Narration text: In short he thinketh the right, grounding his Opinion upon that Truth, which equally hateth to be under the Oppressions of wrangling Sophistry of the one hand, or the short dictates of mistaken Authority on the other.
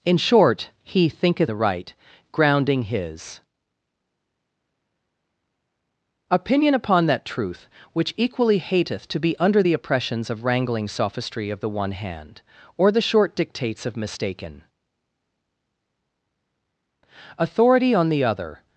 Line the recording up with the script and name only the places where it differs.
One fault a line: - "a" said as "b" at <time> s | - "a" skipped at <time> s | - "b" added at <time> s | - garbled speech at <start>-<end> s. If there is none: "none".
none